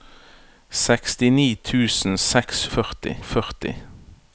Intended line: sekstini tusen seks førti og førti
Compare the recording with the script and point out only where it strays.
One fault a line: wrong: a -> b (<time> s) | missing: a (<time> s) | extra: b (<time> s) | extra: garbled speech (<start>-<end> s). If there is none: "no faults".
no faults